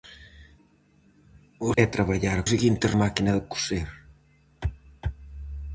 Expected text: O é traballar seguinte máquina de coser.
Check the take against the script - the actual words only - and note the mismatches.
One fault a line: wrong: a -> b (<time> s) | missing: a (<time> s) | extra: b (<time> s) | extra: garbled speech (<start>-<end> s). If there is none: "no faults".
no faults